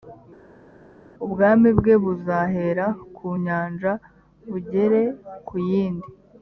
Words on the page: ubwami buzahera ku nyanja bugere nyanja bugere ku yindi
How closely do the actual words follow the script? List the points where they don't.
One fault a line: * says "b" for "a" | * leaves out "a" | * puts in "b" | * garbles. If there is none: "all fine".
* puts in "bwe"
* leaves out "nyanja bugere"